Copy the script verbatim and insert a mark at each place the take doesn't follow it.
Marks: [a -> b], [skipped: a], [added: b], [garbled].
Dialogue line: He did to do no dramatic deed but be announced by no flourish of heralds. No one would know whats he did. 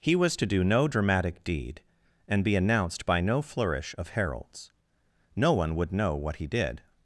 He [did -> was] to do no dramatic deed [but -> and] be announced by no flourish of heralds. No one would know [whats -> what] he did.